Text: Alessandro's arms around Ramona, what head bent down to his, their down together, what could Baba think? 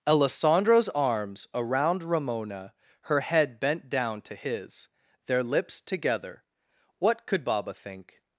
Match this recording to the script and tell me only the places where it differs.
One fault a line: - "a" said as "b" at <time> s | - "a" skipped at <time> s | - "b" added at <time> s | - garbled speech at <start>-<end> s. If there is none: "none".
- "what" said as "her" at 3.0 s
- "down" said as "lips" at 5.4 s